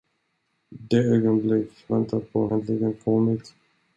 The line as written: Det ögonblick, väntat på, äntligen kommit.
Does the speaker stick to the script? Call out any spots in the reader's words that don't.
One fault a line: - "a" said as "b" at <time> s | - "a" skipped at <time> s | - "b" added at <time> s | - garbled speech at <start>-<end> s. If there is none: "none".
none